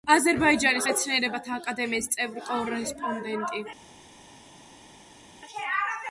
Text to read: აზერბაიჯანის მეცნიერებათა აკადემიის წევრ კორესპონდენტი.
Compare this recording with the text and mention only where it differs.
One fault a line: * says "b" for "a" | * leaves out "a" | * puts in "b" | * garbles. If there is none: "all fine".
all fine